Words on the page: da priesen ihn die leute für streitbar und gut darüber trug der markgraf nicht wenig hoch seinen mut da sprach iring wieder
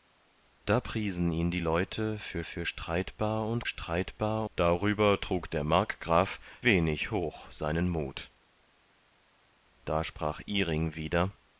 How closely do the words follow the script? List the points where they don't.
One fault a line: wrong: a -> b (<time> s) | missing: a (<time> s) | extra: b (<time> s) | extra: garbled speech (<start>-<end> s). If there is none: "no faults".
extra: für (2.4 s)
wrong: gut -> streitbar (3.7 s)
missing: nicht (6.4 s)